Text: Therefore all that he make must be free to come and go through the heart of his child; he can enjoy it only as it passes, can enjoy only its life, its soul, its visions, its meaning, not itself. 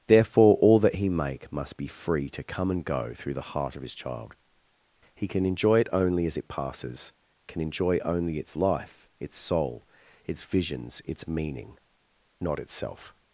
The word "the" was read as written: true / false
true